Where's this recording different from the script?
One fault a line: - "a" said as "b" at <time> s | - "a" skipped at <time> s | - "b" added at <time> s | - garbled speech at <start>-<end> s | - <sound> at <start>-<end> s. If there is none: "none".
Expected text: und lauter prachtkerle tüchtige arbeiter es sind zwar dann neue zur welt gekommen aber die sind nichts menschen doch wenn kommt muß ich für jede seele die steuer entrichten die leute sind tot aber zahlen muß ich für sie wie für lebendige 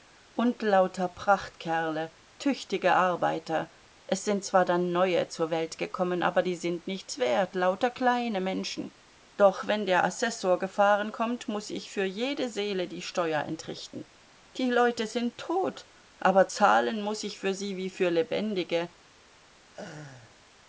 - "wert lauter kleine" added at 7.2 s
- "der assessor gefahren" added at 9.8 s
- laugh at 19.6-20.4 s